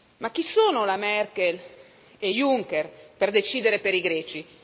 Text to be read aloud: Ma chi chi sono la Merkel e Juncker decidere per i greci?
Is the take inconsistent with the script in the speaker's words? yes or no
yes